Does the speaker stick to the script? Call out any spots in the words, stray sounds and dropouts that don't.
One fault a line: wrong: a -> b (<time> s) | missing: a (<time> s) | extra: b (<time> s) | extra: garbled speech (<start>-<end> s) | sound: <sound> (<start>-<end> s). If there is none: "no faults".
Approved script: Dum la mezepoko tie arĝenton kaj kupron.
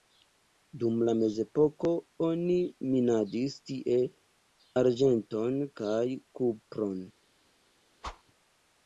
extra: oni minadis (2.3 s)
sound: whoosh (8.0-8.2 s)